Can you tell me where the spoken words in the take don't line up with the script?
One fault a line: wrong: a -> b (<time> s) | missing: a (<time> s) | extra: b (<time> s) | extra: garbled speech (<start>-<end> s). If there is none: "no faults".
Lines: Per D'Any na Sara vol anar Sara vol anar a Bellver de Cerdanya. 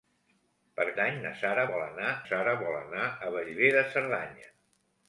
no faults